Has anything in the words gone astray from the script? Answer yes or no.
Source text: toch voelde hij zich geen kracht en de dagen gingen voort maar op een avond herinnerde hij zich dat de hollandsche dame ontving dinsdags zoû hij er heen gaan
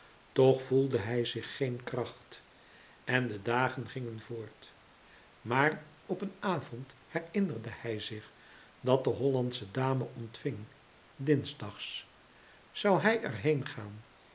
no